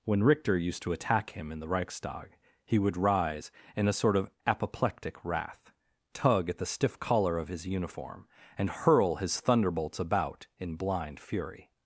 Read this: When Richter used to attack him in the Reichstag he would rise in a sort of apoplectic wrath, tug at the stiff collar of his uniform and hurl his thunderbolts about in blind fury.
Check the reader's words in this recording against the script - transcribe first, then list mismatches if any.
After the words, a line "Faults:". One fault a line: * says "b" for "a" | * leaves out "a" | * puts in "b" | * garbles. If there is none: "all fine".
When Richter used to attack him in the Reichstag he would rise in a sort of apoplectic wrath, tug at the stiff collar of his uniform and hurl his thunderbolts about in blind fury.
Faults:
all fine